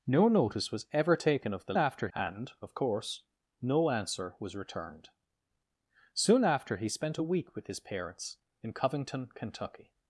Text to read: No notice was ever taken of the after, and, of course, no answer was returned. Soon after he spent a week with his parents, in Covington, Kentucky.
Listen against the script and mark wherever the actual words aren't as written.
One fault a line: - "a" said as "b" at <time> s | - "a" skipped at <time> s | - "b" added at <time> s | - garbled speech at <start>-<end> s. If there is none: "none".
none